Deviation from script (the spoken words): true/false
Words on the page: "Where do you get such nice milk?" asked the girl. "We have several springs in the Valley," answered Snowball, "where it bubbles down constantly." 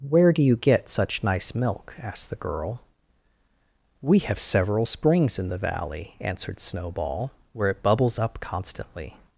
true